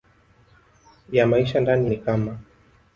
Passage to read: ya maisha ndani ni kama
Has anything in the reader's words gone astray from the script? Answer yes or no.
no